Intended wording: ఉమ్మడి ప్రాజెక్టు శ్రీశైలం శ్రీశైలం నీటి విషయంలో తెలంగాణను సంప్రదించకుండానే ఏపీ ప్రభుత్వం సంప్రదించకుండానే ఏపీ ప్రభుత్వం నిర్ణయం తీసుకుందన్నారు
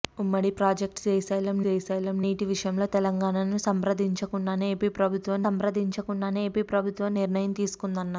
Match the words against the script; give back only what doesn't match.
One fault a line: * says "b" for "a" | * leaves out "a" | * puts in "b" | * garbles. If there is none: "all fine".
all fine